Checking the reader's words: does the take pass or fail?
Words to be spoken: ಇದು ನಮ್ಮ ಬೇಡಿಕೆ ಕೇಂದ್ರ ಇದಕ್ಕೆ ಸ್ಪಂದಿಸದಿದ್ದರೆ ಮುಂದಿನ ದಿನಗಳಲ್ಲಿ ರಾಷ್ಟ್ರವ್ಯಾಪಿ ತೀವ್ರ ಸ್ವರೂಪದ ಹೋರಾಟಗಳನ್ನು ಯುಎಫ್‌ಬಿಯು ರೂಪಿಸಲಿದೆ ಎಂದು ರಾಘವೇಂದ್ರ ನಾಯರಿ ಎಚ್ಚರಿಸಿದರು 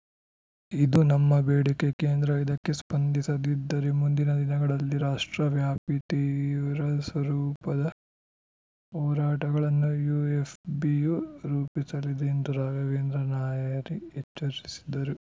pass